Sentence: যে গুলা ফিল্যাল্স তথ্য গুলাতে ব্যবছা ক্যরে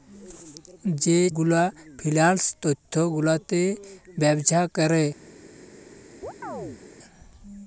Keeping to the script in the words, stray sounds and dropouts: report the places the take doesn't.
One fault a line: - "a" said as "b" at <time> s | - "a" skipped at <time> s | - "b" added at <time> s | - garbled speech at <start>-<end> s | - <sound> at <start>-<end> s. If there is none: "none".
- chirp at 6.2-6.8 s